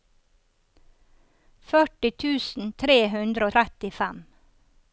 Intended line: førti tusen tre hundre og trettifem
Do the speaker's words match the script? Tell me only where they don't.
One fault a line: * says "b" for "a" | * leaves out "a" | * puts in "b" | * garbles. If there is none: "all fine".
all fine